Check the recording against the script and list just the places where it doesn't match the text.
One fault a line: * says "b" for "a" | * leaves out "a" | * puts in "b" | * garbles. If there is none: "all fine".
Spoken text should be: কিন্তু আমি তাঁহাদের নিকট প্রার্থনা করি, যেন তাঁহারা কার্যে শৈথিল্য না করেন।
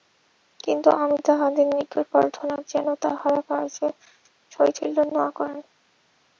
* leaves out "করি"